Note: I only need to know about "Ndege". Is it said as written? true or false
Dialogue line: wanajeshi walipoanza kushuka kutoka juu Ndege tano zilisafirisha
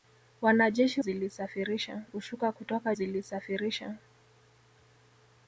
false